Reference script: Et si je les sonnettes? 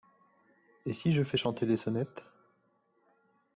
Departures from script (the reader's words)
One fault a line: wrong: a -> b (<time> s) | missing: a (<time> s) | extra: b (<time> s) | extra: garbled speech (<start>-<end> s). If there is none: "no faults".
extra: fais chanter (1.2 s)